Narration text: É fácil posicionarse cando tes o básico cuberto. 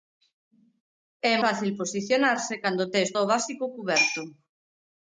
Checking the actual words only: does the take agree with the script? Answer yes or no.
yes